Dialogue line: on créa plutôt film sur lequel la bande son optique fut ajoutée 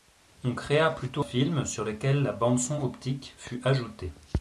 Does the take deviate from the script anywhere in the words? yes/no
no